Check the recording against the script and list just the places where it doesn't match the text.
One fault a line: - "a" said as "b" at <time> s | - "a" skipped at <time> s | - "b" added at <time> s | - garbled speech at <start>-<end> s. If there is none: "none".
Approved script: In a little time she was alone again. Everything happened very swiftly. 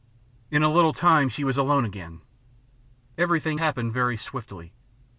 none